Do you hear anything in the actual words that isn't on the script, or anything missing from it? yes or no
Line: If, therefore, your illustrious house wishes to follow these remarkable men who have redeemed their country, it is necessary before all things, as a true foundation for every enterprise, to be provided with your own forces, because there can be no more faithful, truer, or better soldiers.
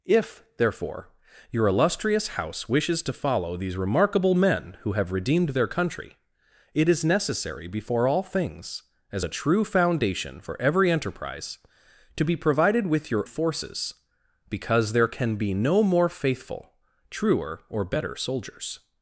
yes